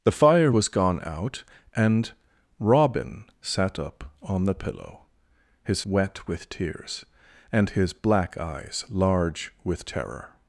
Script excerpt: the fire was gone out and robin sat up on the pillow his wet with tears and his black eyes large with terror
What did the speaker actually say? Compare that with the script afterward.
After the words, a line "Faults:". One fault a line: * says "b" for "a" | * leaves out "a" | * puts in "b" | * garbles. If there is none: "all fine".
the fire was gone out and robin sat up on the pillow his wet with tears and his black eyes large with terror
Faults:
all fine